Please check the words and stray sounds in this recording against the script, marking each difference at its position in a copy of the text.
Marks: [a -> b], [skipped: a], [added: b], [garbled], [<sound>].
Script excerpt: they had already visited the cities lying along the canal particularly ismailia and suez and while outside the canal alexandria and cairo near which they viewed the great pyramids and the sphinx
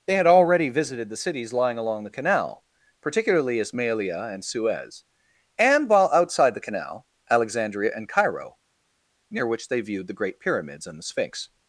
they had already visited the cities lying along the canal particularly ismailia and suez and while outside the canal alexandria and cairo near which they viewed the great pyramids and the sphinx